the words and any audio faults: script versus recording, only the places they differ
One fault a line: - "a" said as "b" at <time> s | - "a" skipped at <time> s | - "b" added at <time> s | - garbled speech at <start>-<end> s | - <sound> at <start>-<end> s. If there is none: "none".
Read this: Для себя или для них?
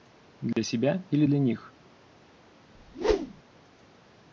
- dropout at 0.5-0.6 s
- whoosh at 2.7-3.4 s